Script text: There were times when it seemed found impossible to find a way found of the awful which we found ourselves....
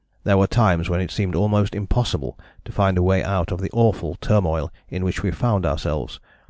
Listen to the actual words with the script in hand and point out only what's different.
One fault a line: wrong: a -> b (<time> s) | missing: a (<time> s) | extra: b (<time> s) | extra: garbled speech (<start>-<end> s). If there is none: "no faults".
wrong: found -> almost (1.4 s)
wrong: found -> out (3.2 s)
extra: turmoil in (4.2 s)